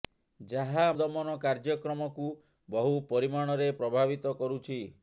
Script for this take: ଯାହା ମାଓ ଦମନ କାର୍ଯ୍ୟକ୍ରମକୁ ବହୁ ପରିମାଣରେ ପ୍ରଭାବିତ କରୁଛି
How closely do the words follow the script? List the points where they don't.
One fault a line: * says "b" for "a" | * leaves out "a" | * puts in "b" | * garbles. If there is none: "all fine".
* leaves out "ମାଓ"